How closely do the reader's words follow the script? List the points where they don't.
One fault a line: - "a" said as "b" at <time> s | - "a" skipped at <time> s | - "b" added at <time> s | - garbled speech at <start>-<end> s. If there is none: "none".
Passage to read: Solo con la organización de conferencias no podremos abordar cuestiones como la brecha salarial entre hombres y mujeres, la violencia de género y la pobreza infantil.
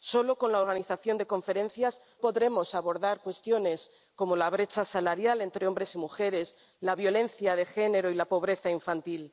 - "no" skipped at 2.0 s